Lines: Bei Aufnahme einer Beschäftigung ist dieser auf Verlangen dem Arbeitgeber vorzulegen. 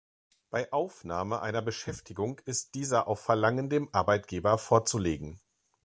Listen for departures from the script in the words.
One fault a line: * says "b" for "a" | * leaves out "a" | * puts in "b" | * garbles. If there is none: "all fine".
all fine